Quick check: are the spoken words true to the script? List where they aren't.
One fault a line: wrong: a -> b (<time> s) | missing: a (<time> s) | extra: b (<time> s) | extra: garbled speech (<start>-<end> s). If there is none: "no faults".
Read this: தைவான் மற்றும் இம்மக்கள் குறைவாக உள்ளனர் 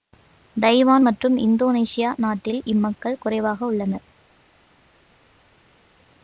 extra: இந்தோனேசியா நாட்டில் (1.4 s)